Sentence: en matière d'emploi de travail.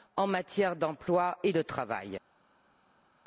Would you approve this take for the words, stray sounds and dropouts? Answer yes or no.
no